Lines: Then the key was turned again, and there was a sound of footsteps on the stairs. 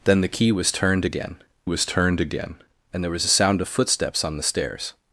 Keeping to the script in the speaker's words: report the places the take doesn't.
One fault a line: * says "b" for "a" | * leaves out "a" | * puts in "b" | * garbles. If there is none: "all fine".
* puts in "was turned again"